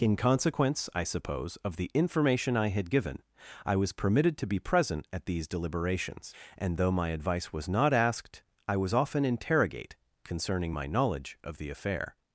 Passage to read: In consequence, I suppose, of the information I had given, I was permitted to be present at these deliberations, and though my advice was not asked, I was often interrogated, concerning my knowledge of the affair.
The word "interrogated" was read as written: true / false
false